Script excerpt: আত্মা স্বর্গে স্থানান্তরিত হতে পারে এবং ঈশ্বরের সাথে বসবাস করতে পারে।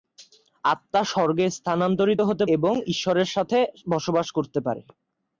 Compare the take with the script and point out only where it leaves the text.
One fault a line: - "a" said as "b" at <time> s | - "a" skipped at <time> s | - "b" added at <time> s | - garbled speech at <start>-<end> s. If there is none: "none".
- "পারে" skipped at 2.4 s